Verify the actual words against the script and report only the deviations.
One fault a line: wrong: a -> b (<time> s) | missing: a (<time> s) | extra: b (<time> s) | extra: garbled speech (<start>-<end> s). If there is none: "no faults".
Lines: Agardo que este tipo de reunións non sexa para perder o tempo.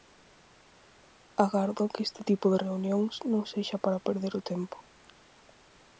no faults